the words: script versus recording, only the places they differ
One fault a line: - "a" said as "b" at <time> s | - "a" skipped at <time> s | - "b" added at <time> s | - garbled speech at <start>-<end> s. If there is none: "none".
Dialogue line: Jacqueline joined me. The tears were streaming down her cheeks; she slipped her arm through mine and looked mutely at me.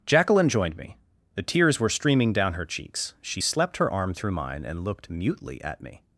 - "slipped" said as "slept" at 3.4 s